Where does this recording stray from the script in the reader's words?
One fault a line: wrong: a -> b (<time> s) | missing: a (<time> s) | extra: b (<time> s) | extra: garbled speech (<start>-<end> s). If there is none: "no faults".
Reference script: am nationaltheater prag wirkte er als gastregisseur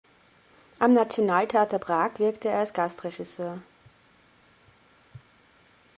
no faults